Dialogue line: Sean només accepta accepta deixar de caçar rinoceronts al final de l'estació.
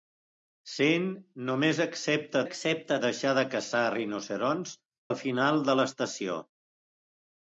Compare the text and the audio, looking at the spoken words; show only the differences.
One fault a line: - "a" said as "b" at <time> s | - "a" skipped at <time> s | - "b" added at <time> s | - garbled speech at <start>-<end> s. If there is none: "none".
none